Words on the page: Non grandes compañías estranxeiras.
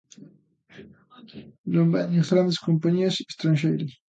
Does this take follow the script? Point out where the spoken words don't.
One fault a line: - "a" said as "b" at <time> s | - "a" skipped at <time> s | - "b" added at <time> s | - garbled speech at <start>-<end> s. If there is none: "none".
- "veñen" added at 1.9 s